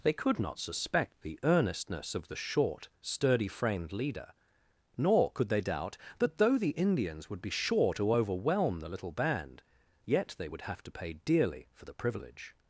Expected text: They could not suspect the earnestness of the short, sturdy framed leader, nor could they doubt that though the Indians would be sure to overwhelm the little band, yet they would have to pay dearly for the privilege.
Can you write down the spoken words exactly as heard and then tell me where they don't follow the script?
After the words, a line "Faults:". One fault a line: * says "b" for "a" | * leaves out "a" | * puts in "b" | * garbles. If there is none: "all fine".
They could not suspect the earnestness of the short, sturdy framed leader, nor could they doubt that though the Indians would be sure to overwhelm the little band, yet they would have to pay dearly for the privilege.
Faults:
all fine